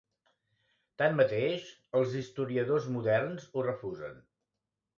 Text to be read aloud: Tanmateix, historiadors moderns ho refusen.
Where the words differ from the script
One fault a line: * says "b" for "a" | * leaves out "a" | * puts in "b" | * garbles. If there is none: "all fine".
* puts in "els"